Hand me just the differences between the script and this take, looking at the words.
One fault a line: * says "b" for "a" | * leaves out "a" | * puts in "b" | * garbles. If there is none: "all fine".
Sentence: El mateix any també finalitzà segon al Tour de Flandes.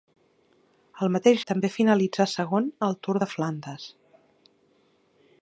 * leaves out "any"